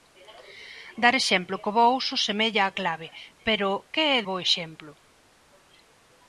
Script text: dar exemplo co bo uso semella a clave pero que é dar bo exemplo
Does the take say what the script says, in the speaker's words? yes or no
no